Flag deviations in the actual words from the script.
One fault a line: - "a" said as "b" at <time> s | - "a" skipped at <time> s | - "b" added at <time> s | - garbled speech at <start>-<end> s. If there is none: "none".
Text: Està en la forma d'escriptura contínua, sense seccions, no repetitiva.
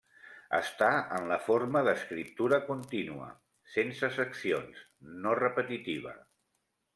none